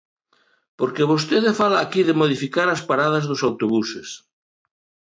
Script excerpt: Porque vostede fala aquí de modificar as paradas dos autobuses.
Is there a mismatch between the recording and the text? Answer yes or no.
no